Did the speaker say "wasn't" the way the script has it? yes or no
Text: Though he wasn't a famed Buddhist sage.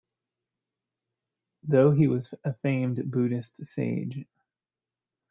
no